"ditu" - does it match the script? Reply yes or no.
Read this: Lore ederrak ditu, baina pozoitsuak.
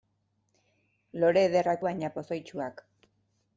no